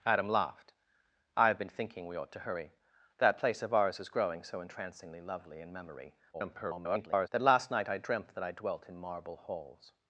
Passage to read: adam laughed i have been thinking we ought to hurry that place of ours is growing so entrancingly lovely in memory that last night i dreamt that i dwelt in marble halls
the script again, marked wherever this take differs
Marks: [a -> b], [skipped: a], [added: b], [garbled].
adam laughed i have been thinking we ought to hurry that place of ours is growing so entrancingly lovely in memory [garbled] that last night i dreamt that i dwelt in marble halls